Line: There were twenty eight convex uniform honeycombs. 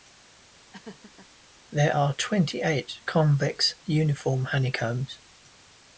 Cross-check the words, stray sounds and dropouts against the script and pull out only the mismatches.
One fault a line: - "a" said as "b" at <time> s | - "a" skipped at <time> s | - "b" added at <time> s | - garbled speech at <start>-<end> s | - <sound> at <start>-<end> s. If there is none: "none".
- laugh at 0.7-1.3 s
- "were" said as "are" at 1.9 s